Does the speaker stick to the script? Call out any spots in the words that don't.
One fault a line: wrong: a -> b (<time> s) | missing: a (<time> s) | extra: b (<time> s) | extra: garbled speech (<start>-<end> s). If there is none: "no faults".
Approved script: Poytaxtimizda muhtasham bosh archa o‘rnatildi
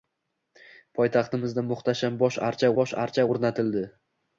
extra: bosh archa (2.8 s)